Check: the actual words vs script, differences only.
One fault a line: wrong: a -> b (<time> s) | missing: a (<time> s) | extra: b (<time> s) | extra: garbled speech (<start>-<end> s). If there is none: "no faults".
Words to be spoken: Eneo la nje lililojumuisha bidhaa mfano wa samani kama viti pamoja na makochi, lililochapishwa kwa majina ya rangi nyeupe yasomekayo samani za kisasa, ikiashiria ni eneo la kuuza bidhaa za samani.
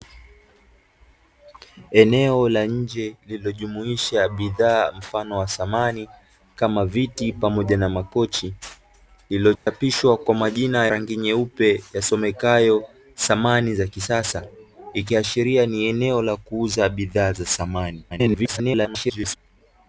missing: ya (10.9 s)
extra: garbled speech (18.1-19.4 s)